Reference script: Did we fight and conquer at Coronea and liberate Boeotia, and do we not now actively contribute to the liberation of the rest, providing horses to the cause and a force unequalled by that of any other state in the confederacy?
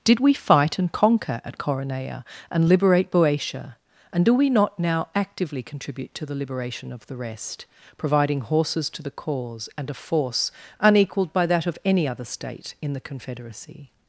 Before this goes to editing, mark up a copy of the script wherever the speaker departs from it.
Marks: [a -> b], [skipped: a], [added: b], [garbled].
Did we fight and conquer at Coronea and liberate Boeotia, and do we not now actively contribute to the liberation of the rest, providing horses to the cause and a force unequalled by that of any other state in the confederacy?